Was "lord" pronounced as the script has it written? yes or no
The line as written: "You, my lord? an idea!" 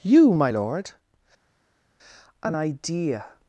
yes